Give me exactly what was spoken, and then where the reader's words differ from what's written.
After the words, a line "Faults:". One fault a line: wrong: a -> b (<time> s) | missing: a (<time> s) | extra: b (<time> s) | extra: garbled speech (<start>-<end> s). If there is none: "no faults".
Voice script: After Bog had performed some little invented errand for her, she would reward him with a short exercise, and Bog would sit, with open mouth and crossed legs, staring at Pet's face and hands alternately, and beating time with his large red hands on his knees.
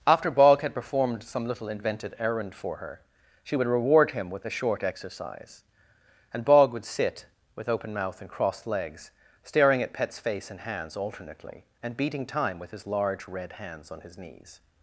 After Bog had performed some little invented errand for her, she would reward him with a short exercise, and Bog would sit, with open mouth and crossed legs, staring at Pet's face and hands alternately, and beating time with his large red hands on his knees.
Faults:
no faults